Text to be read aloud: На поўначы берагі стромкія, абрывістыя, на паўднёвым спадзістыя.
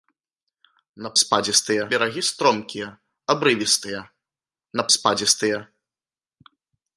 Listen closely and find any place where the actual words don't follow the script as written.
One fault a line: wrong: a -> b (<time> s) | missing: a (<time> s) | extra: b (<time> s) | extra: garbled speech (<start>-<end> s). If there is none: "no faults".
wrong: поўначы -> спадзістыя (1.2 s)
missing: паўднёвым (4.9 s)